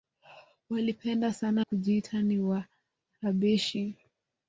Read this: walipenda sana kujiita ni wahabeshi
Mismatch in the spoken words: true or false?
false